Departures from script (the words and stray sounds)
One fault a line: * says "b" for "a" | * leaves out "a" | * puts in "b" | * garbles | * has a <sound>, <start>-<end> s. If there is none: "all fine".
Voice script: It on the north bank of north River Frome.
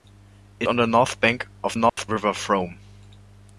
* has a dropout, 1.9-2.0 s